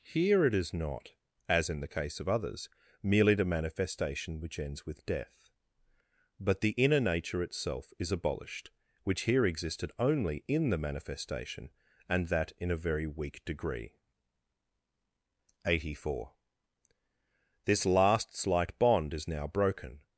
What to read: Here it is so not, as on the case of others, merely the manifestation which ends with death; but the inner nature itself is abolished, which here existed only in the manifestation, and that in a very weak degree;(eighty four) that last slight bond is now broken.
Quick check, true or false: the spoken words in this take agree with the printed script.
false